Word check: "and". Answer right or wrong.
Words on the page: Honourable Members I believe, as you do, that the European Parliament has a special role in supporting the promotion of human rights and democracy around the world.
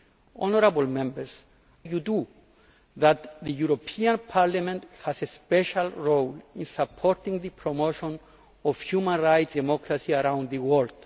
wrong